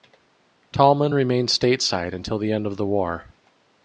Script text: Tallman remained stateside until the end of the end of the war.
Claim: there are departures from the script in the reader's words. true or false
true